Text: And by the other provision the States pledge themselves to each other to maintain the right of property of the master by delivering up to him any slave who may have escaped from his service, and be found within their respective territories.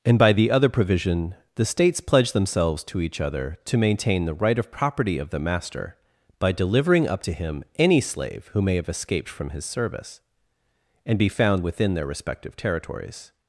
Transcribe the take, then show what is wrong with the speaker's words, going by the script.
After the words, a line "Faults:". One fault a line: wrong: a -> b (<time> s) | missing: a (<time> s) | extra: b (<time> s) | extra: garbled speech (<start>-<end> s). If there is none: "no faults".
And by the other provision the States pledge themselves to each other to maintain the right of property of the master by delivering up to him any slave who may have escaped from his service, and be found within their respective territories.
Faults:
no faults